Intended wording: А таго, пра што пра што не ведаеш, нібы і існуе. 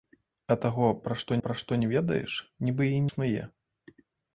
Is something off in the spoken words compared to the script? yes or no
no